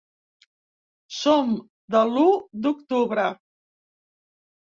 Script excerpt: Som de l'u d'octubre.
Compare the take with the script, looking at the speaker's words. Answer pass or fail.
pass